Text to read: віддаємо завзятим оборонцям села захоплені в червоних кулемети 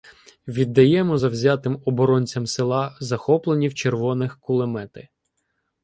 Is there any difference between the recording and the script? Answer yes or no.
no